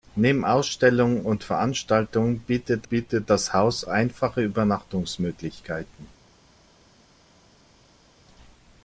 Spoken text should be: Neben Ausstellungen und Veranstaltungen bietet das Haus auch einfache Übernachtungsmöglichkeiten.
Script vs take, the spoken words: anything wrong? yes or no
yes